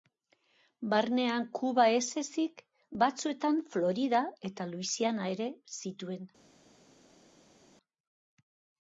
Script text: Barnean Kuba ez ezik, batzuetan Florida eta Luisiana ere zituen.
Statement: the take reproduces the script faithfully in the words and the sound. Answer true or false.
true